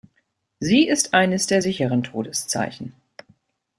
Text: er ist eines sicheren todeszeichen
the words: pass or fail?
fail